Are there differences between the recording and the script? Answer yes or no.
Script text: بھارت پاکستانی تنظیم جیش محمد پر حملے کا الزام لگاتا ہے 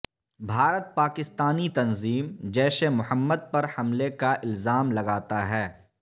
no